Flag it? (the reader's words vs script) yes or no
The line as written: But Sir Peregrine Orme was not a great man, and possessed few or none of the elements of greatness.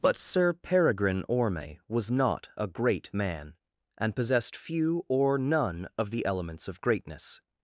no